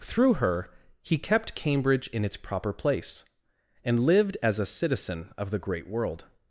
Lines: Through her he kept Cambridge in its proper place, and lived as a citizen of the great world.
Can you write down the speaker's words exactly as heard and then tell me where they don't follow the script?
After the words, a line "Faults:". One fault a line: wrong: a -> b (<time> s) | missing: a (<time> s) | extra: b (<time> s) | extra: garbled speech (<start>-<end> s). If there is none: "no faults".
Through her he kept Cambridge in its proper place, and lived as a citizen of the great world.
Faults:
no faults